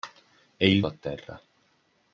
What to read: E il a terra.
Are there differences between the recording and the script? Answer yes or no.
no